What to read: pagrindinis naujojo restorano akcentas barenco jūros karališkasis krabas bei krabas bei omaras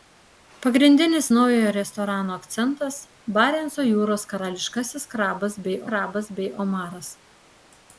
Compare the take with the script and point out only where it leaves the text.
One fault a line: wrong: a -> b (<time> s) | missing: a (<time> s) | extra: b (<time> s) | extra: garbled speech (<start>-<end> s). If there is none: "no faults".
no faults